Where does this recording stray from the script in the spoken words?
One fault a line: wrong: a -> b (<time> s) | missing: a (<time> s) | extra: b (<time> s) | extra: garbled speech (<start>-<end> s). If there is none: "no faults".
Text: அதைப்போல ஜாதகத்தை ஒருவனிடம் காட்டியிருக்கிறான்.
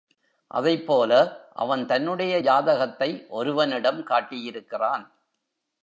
extra: அவன் தன்னுடைய (1.5 s)